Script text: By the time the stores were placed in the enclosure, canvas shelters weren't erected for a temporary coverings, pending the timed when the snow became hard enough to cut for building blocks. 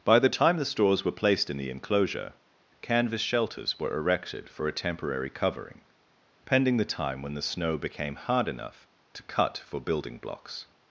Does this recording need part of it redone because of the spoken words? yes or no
yes